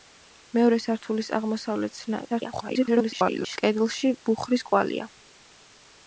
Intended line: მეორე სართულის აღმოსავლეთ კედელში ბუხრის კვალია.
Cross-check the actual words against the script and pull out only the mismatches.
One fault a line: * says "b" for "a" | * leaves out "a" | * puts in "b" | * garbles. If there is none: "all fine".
* garbles